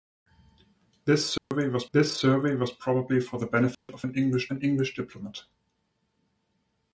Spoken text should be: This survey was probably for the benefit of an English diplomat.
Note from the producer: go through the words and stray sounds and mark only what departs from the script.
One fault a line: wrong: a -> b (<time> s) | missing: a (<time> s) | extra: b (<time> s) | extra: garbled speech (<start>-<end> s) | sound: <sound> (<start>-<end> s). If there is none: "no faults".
sound: dropout (1.4-1.5 s)
extra: this survey was (1.9 s)
sound: dropout (3.7-3.9 s)
extra: an English (4.5 s)